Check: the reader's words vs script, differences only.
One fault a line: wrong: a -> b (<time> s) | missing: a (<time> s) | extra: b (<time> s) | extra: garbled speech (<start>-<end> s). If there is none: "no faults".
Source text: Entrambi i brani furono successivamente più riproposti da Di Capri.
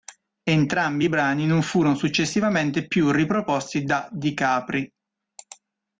extra: non (1.5 s)